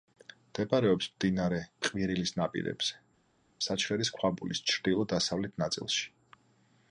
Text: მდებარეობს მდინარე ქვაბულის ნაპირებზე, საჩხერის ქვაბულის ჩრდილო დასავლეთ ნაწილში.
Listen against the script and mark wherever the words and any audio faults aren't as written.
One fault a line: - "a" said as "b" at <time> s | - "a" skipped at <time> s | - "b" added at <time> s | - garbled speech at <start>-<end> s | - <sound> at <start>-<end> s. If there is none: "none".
- "ქვაბულის" said as "ყვირილის" at 1.9 s